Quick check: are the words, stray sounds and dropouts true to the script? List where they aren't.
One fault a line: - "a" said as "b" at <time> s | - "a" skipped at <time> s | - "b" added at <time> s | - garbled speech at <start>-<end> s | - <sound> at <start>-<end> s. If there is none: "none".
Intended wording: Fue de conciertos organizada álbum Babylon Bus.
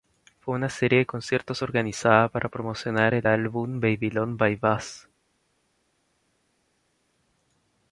- "una serie" added at 0.6 s
- "para promocionar el" added at 2.3 s
- "By" added at 4.4 s